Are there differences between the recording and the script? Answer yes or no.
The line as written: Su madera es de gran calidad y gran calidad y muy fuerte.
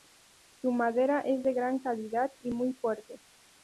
yes